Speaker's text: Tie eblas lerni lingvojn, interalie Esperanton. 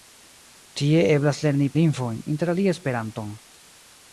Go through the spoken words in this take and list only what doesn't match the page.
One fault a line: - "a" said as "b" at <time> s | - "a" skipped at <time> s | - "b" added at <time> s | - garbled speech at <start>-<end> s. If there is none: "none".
none